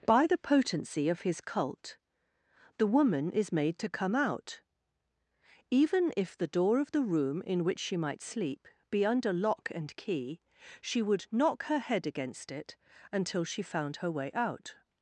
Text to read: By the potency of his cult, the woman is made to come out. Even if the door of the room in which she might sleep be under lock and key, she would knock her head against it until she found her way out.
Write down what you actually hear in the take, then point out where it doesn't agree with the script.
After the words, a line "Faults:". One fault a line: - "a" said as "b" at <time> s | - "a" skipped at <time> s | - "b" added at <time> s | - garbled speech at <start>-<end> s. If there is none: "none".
By the potency of his cult, the woman is made to come out. Even if the door of the room in which she might sleep be under lock and key, she would knock her head against it until she found her way out.
Faults:
none